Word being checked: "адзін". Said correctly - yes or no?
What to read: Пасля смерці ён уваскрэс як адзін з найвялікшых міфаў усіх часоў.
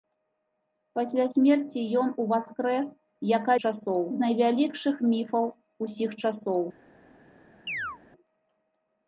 no